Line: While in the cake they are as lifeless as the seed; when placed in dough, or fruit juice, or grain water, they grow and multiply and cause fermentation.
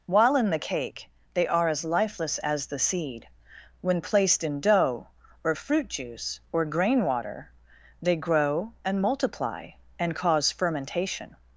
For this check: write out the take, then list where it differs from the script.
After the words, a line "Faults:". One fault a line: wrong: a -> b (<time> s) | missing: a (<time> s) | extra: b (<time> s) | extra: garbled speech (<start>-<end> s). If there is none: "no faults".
While in the cake they are as lifeless as the seed; when placed in dough, or fruit juice, or grain water, they grow and multiply and cause fermentation.
Faults:
no faults